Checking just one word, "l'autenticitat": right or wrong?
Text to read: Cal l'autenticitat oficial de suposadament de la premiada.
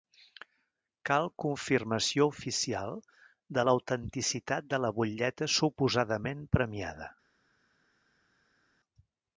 wrong